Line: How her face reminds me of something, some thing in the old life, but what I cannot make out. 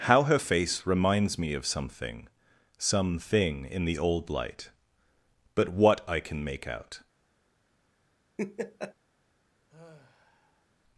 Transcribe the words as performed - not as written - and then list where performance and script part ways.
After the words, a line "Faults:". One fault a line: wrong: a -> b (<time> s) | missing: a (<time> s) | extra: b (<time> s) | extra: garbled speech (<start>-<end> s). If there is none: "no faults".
How her face reminds me of something, some thing in the old light, but what I can make out.
Faults:
wrong: life -> light (4.3 s)
wrong: cannot -> can (6.2 s)